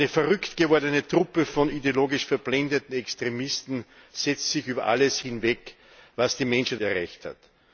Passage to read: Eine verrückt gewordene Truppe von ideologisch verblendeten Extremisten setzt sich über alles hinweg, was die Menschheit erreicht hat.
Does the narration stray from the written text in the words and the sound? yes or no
no